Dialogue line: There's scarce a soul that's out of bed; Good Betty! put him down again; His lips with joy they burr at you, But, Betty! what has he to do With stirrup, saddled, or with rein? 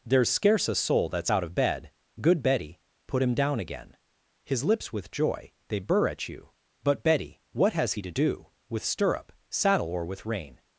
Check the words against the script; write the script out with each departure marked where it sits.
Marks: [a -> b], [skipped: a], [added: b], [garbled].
There's scarce a soul that's out of bed; Good Betty! put him down again; His lips with joy they burr at you, But, Betty! what has he to do With stirrup, [saddled, -> saddle] or with rein?